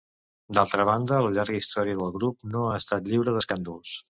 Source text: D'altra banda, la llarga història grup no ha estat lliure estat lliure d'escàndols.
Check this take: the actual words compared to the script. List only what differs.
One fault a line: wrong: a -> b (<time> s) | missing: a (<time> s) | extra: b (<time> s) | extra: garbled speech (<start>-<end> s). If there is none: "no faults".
extra: del (2.0 s)
missing: estat lliure (3.4 s)